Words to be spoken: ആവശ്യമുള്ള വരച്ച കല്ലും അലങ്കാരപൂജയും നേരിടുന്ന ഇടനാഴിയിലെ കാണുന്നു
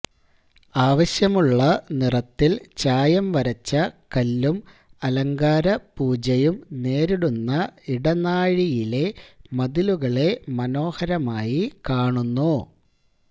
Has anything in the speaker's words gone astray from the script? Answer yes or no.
yes